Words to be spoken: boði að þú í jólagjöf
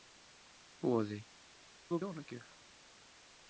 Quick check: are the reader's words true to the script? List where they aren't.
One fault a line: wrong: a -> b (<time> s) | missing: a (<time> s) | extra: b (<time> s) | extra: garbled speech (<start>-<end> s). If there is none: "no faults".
no faults